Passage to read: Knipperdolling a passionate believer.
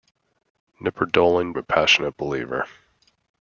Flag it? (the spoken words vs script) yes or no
no